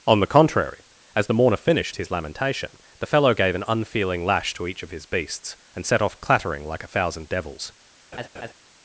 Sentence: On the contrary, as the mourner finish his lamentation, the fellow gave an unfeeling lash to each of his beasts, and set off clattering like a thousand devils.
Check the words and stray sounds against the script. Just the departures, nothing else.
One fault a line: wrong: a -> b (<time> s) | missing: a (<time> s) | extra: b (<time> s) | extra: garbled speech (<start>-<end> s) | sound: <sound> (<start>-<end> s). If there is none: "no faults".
wrong: finish -> finished (1.6 s)
sound: laugh (8.1-8.5 s)